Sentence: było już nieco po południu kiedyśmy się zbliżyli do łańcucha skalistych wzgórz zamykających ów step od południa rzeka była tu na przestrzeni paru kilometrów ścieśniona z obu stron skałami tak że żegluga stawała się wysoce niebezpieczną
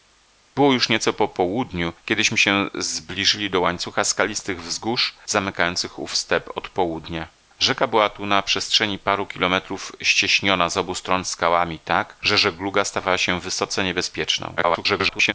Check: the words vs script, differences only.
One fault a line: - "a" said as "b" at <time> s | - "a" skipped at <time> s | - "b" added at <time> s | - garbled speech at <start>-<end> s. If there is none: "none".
- garbled speech at 14.6-15.3 s